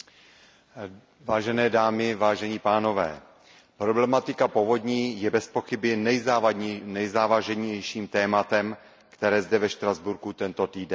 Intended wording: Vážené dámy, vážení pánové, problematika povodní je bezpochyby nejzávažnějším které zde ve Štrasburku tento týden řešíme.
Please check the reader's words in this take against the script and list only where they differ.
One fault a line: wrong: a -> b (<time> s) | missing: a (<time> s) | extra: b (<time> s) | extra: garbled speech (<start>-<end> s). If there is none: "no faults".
extra: tématem (8.1 s)